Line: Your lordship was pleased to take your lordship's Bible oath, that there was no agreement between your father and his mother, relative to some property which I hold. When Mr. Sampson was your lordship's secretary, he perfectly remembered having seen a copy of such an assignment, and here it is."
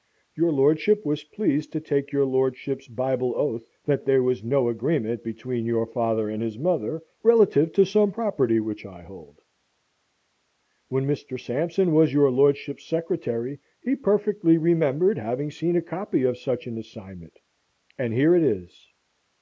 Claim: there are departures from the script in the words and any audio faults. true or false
false